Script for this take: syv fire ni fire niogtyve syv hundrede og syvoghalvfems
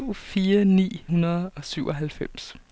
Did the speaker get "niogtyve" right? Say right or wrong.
wrong